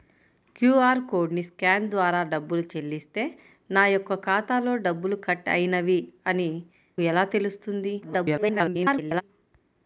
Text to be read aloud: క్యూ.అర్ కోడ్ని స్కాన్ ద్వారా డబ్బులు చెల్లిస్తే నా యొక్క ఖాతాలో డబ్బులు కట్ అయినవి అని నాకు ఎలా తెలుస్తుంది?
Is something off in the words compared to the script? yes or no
yes